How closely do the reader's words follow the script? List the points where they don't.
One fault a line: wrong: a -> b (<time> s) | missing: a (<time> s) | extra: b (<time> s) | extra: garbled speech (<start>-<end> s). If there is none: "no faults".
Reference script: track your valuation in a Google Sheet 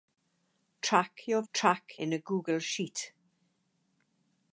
wrong: valuation -> track (1.5 s)